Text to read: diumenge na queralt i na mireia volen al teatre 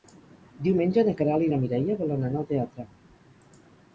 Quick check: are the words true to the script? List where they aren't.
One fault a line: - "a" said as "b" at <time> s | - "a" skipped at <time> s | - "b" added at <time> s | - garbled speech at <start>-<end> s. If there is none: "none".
- "anar" added at 2.3 s